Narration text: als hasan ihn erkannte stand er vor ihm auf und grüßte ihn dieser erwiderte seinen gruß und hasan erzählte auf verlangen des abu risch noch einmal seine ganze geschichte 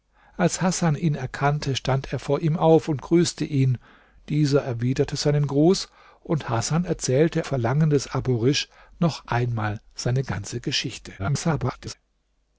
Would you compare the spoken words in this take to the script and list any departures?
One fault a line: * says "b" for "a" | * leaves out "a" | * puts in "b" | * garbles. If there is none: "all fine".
* leaves out "auf"
* garbles